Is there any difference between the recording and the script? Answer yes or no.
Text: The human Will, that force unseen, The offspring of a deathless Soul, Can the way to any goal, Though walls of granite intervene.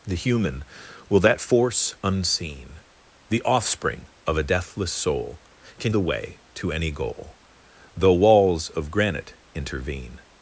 no